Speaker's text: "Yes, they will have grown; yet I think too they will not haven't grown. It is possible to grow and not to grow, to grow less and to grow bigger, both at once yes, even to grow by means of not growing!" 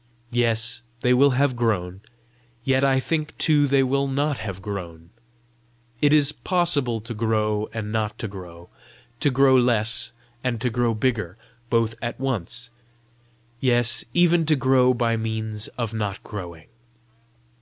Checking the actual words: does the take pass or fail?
fail